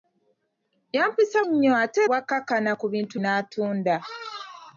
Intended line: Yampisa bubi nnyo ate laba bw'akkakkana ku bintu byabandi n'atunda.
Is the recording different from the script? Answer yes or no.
yes